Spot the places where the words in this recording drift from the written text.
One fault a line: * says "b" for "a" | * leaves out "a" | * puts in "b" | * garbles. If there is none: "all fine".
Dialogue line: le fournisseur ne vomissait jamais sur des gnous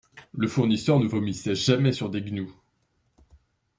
all fine